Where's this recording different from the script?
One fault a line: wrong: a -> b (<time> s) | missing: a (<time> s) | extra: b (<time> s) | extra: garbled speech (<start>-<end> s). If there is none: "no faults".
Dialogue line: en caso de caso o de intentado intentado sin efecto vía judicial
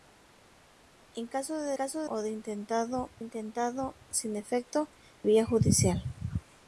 no faults